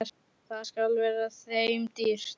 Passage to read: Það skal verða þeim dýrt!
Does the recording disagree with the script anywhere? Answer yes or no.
no